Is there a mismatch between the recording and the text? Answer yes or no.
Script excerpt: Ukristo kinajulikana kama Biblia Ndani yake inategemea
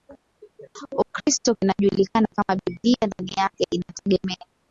no